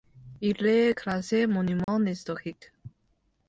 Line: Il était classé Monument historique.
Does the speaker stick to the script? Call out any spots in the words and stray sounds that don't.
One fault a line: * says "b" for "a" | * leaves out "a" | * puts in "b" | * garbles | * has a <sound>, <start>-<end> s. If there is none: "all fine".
* says "est" for "était"
* has a dropout, 1.8-1.9 s